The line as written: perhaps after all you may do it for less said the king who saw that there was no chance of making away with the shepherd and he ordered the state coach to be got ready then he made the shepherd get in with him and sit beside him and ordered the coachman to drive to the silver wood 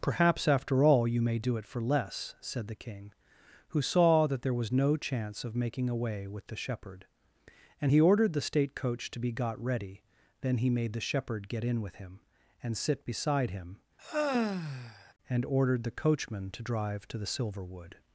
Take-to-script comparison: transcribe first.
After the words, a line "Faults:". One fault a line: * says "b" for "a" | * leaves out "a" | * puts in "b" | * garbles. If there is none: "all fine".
perhaps after all you may do it for less said the king who saw that there was no chance of making away with the shepherd and he ordered the state coach to be got ready then he made the shepherd get in with him and sit beside him and ordered the coachman to drive to the silver wood
Faults:
all fine